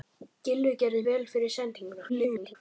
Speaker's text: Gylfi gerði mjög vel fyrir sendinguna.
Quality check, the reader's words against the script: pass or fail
fail